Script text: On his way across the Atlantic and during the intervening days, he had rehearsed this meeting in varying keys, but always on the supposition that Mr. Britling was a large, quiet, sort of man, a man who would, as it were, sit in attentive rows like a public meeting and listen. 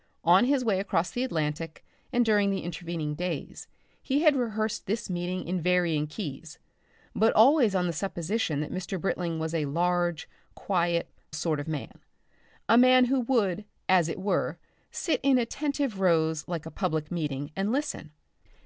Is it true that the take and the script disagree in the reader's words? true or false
false